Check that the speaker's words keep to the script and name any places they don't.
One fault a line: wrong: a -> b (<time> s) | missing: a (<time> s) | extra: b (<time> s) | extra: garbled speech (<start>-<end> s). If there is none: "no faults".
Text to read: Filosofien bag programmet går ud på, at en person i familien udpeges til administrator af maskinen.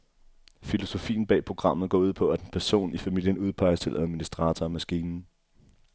no faults